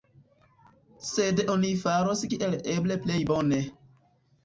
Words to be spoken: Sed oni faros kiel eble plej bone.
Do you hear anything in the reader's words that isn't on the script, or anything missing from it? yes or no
no